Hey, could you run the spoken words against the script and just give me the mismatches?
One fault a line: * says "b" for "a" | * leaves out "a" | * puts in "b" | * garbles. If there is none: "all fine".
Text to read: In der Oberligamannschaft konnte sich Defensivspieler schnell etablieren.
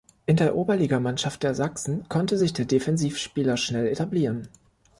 * puts in "der Sachsen"
* puts in "der"